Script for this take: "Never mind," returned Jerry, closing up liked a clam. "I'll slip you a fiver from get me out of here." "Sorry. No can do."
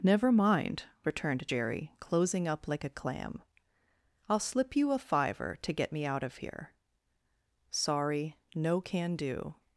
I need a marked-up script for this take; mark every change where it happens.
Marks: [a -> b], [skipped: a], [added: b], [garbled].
"Never mind," returned Jerry, closing up [liked -> like] a clam. "I'll slip you a fiver [from -> to] get me out of here." "Sorry. No can do."